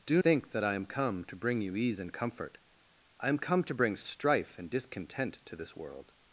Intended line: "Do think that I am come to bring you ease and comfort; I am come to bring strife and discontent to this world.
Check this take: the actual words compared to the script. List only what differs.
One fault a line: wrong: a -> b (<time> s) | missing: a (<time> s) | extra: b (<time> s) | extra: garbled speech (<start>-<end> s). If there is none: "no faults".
no faults